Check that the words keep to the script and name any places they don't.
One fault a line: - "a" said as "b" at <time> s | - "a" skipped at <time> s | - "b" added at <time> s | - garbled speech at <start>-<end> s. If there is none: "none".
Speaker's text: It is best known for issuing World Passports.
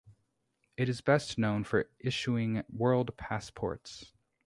none